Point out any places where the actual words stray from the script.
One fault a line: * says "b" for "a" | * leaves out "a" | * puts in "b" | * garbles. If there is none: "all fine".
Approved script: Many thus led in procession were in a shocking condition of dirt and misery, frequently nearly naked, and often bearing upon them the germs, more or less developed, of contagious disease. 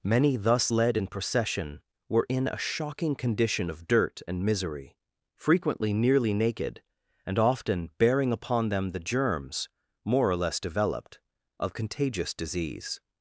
all fine